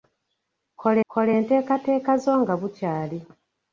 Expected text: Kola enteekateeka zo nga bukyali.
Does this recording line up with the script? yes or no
no